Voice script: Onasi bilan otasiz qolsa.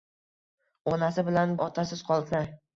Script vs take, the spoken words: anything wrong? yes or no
no